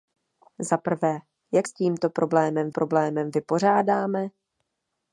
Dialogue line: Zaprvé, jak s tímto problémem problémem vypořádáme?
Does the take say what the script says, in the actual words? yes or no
yes